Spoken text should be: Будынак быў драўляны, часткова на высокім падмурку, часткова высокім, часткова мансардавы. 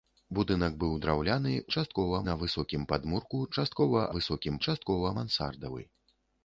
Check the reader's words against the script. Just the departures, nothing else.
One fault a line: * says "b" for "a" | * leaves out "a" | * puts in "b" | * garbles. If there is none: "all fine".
all fine